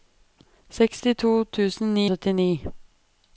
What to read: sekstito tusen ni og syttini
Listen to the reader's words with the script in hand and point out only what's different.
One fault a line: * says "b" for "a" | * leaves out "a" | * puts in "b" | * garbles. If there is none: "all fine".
all fine